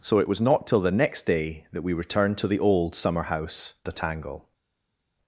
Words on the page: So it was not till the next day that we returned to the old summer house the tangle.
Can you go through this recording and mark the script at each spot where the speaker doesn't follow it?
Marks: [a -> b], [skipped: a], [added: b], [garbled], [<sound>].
So it was not till the next day that we returned to the old summer house the tangle.